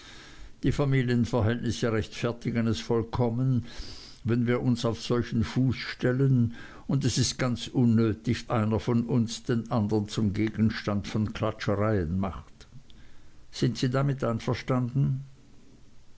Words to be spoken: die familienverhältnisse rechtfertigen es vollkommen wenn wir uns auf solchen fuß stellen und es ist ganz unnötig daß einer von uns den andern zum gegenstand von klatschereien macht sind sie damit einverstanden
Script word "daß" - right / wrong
wrong